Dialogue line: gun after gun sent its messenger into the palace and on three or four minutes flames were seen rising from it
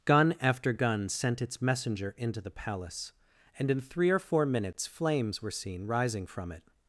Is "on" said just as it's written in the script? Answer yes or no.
no